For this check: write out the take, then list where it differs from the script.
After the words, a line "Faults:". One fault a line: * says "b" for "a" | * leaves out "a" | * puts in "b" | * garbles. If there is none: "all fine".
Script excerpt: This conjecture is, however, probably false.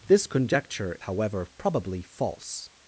This conjecture however, probably false.
Faults:
* leaves out "is"